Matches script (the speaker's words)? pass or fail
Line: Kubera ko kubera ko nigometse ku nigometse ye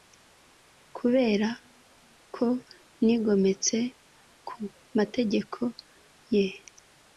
fail